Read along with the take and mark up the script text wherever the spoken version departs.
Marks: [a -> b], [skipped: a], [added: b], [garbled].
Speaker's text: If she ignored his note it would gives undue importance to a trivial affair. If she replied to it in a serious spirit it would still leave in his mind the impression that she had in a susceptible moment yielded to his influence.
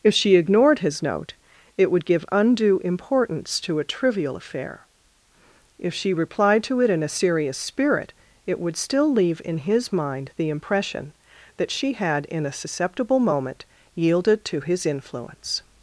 If she ignored his note it would [gives -> give] undue importance to a trivial affair. If she replied to it in a serious spirit it would still leave in his mind the impression that she had in a susceptible moment yielded to his influence.